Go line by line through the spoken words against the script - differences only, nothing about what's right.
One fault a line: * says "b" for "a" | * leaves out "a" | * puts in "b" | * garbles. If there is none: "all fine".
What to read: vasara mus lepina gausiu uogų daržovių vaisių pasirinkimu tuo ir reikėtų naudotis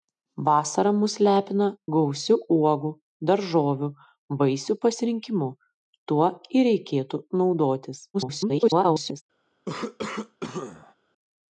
* garbles